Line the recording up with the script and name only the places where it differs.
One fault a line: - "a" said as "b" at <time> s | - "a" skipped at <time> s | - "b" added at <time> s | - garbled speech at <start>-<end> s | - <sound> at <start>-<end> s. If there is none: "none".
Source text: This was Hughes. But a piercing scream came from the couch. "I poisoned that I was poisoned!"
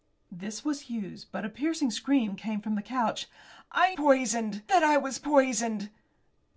none